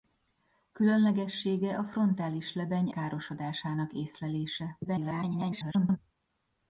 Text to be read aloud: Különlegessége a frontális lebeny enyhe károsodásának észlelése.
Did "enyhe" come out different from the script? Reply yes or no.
yes